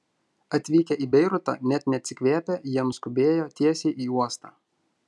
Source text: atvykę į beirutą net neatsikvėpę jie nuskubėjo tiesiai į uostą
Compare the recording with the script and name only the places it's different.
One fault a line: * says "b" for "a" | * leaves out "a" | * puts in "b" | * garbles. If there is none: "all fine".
all fine